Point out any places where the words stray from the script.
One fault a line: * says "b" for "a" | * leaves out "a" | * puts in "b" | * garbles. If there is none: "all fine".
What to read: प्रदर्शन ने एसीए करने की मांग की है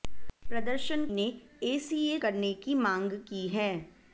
all fine